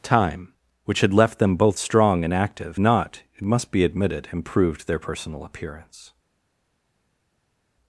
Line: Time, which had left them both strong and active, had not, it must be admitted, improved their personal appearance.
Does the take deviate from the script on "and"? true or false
false